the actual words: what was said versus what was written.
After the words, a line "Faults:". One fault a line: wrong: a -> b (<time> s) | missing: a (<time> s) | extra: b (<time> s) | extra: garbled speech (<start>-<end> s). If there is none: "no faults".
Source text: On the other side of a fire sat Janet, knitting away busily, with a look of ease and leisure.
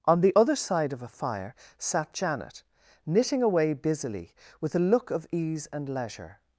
On the other side of a fire sat Janet, knitting away busily, with a look of ease and leisure.
Faults:
no faults